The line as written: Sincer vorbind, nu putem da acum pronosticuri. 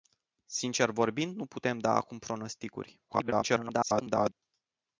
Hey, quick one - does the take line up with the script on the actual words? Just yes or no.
no